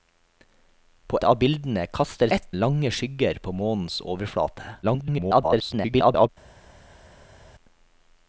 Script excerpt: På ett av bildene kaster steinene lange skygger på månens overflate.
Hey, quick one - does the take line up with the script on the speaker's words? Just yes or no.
no